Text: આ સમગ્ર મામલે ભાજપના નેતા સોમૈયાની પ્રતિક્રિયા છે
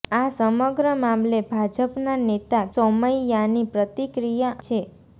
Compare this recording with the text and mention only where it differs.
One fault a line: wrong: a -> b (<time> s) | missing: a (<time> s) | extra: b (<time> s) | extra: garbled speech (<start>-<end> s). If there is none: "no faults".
no faults